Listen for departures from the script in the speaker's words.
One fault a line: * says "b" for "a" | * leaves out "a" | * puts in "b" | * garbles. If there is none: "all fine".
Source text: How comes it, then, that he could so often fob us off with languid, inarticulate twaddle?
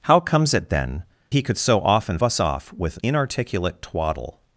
* leaves out "that"
* leaves out "fob"
* leaves out "languid"